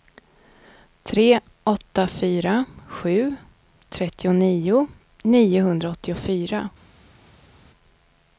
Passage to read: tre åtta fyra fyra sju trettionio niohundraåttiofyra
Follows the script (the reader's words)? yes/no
no